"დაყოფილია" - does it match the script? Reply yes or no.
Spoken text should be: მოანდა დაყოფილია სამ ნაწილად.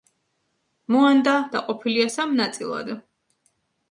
yes